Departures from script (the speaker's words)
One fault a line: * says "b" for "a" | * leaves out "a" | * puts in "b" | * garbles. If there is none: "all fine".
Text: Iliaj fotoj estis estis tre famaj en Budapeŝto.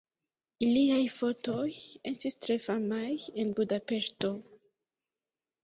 * leaves out "estis"